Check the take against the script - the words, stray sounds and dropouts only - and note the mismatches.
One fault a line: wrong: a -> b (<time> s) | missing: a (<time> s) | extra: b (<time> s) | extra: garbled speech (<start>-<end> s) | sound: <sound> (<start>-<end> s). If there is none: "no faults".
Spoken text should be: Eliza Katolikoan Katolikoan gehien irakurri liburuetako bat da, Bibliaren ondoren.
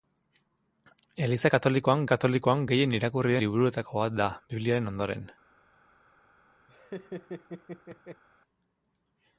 sound: laugh (6.7-8.2 s)